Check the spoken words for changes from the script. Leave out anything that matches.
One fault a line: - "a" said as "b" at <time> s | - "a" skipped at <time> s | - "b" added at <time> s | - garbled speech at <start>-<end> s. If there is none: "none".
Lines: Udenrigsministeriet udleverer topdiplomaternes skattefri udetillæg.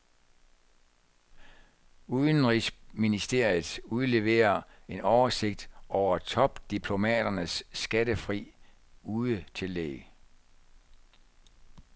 - "en oversigt over" added at 4.9 s